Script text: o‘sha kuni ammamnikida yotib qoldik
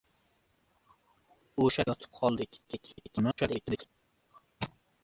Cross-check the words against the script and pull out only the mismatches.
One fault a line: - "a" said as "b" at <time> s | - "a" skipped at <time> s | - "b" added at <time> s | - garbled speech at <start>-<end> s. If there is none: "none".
- "kuni ammamnikida" skipped at 1.9 s
- garbled speech at 2.6-3.9 s